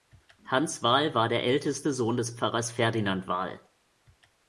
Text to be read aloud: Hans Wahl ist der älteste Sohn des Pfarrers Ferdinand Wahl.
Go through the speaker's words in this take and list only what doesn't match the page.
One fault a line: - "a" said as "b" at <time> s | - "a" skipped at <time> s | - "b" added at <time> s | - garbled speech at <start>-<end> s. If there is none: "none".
- "ist" said as "war" at 1.1 s